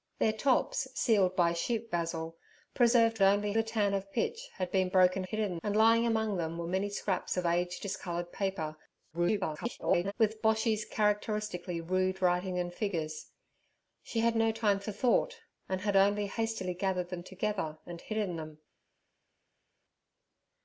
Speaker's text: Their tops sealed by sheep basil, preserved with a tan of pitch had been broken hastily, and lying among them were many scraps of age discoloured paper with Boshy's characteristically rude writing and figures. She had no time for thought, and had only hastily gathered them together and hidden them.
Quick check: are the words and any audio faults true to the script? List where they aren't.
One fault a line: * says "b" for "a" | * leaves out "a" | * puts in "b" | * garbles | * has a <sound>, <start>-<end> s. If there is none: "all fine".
* says "only" for "with"
* says "hidden" for "hastily"
* garbles